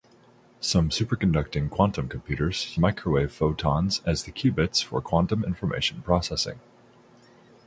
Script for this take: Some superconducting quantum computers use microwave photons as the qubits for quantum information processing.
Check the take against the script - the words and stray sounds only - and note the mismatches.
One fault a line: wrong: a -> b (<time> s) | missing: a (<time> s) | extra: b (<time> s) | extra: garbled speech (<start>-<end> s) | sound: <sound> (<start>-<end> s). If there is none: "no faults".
missing: use (2.8 s)